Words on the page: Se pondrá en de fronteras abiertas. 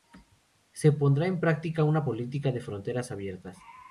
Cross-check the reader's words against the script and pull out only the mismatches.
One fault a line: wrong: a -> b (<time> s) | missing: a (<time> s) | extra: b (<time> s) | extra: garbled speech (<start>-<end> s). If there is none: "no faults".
extra: práctica una política (1.4 s)